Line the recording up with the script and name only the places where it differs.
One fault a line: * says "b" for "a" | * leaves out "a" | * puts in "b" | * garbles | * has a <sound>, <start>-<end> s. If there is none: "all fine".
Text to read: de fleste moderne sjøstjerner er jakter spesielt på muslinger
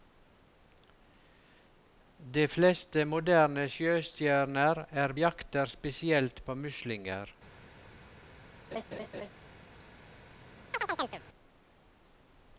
* has a laugh, 8.7-9.3 s
* has a chirp, 10.7-11.2 s